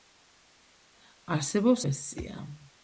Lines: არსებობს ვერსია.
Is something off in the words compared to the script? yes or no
no